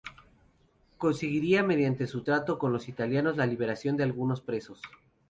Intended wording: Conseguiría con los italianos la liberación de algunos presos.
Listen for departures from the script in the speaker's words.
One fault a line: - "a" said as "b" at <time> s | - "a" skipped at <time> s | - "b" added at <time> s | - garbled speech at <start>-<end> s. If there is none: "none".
- "mediante su trato" added at 1.6 s